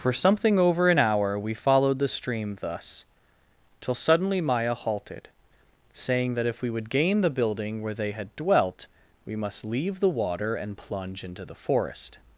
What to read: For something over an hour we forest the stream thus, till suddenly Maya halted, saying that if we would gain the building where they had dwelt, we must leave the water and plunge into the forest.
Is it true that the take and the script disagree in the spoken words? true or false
true